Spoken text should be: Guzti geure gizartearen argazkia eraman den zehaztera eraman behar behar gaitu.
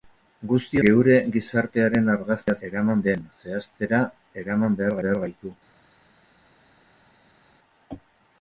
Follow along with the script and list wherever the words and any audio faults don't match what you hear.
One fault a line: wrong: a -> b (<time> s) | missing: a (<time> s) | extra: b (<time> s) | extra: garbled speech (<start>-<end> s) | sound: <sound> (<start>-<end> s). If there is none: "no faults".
no faults